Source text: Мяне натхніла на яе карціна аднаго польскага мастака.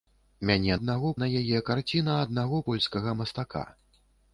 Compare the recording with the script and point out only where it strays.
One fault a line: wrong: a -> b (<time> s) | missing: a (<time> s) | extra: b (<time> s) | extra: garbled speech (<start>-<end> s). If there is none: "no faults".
wrong: натхніла -> аднаго (0.8 s)